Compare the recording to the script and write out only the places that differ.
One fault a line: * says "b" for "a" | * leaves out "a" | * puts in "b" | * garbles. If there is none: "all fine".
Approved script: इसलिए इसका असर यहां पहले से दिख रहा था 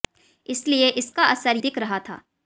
* leaves out "यहां पहले से"